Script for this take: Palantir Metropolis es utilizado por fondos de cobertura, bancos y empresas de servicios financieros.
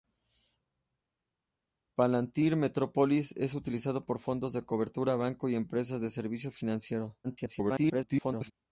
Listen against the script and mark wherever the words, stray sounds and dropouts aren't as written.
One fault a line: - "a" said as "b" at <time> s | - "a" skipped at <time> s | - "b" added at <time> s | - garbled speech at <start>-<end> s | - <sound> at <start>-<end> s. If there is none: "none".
- garbled speech at 7.2-8.5 s